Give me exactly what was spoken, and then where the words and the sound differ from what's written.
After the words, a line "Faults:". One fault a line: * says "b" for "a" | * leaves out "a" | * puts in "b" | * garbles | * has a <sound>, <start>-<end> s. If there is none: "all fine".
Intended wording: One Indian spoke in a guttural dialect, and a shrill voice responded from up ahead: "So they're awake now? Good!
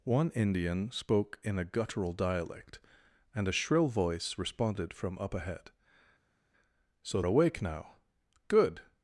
One Indian spoke in a guttural dialect, and a shrill voice responded from up ahead: "So awake now? Good!
Faults:
* leaves out "they're"